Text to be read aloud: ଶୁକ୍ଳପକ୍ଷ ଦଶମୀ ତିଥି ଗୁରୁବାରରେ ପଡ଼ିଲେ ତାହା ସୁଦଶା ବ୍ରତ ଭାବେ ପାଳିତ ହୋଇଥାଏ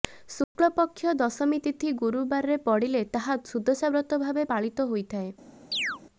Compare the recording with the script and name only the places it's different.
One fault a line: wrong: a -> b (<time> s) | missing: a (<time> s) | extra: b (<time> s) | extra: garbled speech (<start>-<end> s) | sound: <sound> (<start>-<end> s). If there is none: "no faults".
sound: dropout (0.4-0.6 s)
sound: chirp (5.7-6.0 s)